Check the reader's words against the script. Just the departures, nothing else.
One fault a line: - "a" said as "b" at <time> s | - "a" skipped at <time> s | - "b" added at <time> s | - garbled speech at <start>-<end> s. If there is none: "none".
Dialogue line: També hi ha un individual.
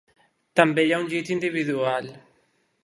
- "llit" added at 1.2 s